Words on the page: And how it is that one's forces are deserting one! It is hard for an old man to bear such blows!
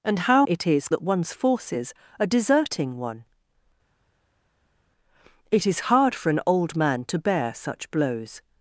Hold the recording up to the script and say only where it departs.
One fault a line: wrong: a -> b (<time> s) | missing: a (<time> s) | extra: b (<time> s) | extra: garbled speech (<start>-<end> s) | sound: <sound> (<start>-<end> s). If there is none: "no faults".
no faults